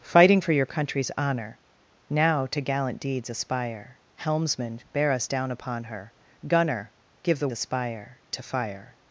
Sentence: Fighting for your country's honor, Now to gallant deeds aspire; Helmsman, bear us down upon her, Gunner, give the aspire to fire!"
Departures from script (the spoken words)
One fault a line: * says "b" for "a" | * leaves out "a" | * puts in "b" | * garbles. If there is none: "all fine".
all fine